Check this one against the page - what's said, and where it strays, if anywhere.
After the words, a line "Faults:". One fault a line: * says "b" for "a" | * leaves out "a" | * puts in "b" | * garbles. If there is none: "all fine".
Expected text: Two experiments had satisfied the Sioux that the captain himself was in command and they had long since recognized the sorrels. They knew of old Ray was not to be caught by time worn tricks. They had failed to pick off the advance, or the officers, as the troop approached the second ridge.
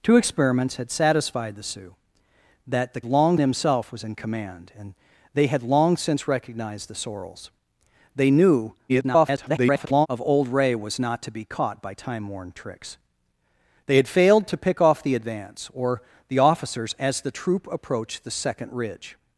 Two experiments had satisfied the Sioux that the long himself was in command and they had long since recognized the sorrels. They knew [garbled] of old Ray was not to be caught by time worn tricks. They had failed to pick off the advance, or the officers, as the troop approached the second ridge.
Faults:
* says "long" for "captain"
* garbles